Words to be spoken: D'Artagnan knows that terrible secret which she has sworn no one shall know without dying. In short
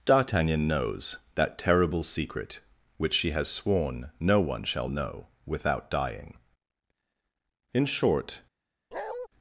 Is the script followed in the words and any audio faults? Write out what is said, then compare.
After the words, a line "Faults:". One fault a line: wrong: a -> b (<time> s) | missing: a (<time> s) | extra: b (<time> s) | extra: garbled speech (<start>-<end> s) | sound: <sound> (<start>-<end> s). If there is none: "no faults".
D'Artagnan knows that terrible secret which she has sworn no one shall know without dying. In short
Faults:
sound: bark (8.9-9.3 s)